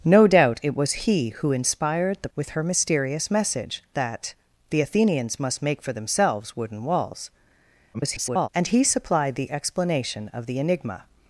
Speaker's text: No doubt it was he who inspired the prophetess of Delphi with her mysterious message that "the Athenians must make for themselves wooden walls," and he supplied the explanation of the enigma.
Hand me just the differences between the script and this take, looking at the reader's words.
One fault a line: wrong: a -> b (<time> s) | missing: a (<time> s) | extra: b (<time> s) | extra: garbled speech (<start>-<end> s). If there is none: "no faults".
missing: prophetess of Delphi (2.3 s)
extra: garbled speech (7.9-8.5 s)